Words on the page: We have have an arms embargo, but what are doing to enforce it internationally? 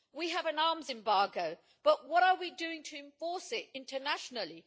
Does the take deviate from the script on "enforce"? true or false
false